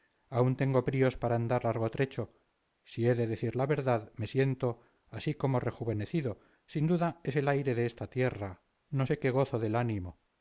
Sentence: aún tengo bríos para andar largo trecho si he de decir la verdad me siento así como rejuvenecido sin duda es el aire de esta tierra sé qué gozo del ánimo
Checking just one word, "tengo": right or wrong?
right